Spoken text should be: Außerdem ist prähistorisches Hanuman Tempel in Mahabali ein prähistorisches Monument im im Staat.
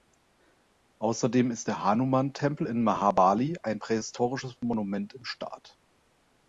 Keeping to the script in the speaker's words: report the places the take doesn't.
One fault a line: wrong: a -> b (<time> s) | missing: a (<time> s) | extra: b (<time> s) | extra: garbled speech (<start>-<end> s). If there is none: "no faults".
wrong: prähistorisches -> der (1.7 s)
missing: im (5.3 s)